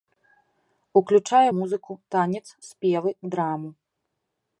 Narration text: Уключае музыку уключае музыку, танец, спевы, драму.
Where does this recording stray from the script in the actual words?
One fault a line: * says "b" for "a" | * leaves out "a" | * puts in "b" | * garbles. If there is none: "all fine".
* leaves out "уключае музыку"